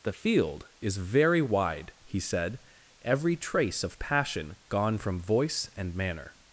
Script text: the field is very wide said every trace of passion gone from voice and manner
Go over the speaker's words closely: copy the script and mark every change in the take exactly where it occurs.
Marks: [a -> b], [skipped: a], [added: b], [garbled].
the field is very wide [added: he] said every trace of passion gone from voice and manner